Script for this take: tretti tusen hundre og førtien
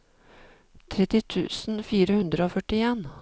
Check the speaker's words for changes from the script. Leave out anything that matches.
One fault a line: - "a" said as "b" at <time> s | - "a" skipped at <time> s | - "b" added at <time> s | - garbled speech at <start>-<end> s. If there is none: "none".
- "fire" added at 1.9 s